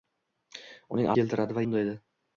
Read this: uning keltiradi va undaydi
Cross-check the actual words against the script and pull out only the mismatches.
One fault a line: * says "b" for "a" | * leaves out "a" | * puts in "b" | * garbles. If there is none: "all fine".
all fine